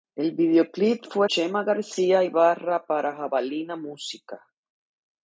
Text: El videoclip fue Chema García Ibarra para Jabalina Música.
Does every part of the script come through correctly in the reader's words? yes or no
yes